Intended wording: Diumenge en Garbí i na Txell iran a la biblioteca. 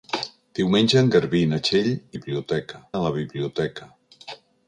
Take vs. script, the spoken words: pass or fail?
fail